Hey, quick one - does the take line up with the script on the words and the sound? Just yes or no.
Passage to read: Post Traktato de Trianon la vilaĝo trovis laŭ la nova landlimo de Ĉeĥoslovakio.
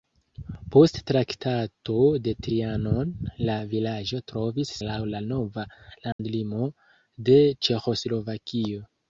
no